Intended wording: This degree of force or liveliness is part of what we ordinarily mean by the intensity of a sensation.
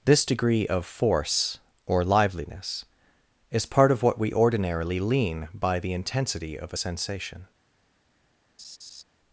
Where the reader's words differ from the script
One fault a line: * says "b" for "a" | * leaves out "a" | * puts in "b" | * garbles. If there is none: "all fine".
* says "lean" for "mean"